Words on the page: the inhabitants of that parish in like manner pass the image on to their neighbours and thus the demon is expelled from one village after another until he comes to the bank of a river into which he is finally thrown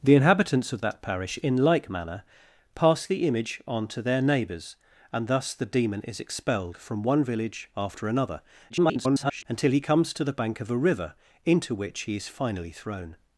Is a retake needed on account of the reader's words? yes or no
yes